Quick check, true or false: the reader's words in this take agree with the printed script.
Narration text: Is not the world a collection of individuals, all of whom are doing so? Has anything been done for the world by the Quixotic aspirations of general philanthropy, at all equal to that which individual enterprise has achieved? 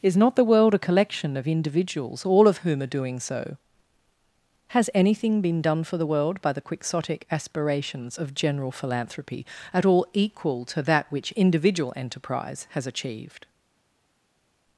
true